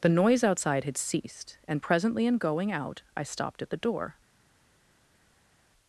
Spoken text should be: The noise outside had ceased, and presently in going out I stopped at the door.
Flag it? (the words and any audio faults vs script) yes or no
no